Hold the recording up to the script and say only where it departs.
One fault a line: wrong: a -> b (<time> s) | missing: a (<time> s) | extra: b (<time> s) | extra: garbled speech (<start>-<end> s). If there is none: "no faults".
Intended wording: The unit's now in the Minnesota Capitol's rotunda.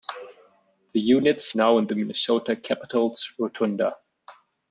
no faults